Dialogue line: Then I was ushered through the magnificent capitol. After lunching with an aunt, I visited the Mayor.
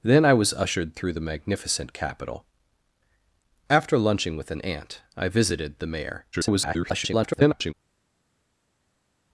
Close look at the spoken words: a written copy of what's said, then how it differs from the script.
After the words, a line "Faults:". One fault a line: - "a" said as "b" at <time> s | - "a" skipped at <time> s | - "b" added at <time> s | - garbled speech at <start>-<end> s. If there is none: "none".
Then I was ushered through the magnificent capitol. After lunching with an aunt, I visited the Mayor. [garbled]
Faults:
- garbled speech at 6.3-7.7 s